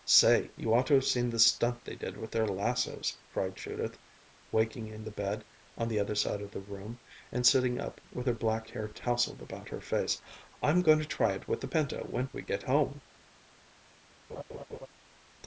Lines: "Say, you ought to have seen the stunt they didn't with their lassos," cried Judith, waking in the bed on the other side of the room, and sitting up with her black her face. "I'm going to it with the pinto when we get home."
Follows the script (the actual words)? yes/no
no